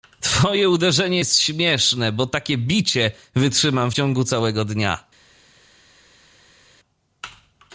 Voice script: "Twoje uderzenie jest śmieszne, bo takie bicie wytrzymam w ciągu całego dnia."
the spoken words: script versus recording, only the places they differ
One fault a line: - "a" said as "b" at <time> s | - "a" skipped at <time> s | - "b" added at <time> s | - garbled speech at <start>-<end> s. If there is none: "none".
none